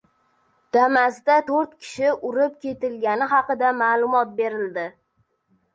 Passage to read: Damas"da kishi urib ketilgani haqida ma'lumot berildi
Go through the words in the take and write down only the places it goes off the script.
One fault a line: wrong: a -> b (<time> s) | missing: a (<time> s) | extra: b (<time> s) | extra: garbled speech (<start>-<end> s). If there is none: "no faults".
extra: to‘rt (1.5 s)